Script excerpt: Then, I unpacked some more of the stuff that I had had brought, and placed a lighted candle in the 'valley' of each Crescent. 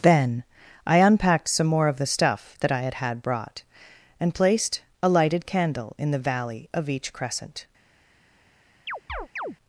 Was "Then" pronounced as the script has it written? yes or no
yes